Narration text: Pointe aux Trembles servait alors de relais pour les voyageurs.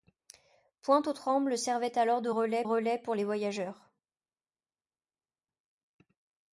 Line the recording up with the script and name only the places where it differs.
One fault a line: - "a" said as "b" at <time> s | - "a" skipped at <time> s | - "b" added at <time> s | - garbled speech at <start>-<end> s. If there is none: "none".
- "relais" added at 2.6 s